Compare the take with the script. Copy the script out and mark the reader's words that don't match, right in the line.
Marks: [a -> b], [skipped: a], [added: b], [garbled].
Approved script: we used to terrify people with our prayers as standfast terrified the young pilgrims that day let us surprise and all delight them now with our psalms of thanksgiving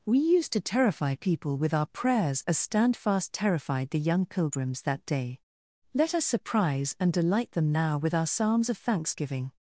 we used to terrify people with our prayers as standfast terrified the young pilgrims that day let us surprise and [skipped: all] delight them now with our psalms of thanksgiving